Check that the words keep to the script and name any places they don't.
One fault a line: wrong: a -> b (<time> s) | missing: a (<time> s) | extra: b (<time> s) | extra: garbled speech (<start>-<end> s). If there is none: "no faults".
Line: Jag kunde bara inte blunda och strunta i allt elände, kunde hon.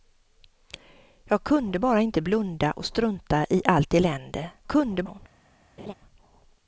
no faults